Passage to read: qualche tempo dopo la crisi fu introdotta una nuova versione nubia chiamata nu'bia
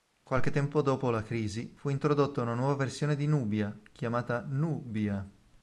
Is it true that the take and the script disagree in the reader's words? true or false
true